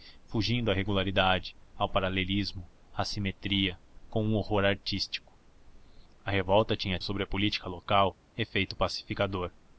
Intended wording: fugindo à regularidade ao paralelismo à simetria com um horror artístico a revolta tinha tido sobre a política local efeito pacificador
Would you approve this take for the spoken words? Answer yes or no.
no